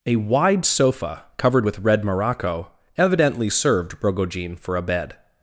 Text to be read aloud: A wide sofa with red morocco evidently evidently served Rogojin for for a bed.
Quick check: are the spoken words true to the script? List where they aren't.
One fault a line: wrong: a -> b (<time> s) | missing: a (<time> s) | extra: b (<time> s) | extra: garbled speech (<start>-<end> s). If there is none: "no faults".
extra: covered (1.4 s)
missing: evidently (3.5 s)
missing: for (4.8 s)